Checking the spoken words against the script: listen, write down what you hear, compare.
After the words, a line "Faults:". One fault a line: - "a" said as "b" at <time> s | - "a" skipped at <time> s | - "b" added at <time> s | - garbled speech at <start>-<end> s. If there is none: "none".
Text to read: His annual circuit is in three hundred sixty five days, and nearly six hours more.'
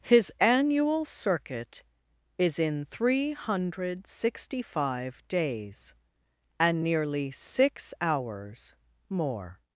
His annual circuit is in three hundred sixty five days, and nearly six hours more.'
Faults:
none